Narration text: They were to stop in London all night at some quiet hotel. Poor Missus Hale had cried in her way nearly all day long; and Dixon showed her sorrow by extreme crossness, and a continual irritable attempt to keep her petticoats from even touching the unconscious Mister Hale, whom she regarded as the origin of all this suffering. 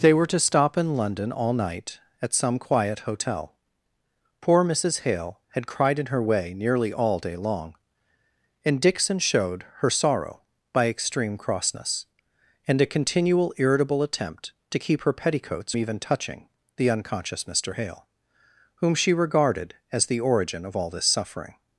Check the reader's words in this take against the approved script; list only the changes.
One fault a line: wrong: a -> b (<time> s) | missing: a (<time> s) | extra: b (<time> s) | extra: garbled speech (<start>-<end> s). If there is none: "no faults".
missing: from (15.7 s)